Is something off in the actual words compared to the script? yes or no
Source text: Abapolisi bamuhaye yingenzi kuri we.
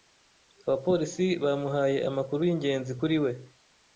yes